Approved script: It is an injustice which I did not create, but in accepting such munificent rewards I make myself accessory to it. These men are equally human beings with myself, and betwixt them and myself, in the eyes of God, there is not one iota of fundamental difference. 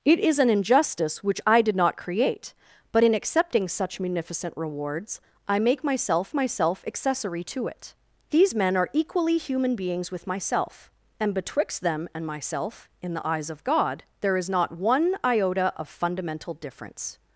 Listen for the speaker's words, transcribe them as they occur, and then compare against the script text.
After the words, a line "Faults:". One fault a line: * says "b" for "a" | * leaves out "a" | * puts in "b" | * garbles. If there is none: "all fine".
It is an injustice which I did not create, but in accepting such munificent rewards I make myself myself accessory to it. These men are equally human beings with myself, and betwixt them and myself, in the eyes of God, there is not one iota of fundamental difference.
Faults:
* puts in "myself"